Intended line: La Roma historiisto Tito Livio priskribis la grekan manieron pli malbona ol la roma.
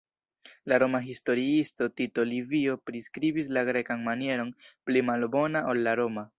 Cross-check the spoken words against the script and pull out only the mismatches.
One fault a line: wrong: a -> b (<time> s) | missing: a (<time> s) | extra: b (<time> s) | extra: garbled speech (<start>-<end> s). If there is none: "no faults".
no faults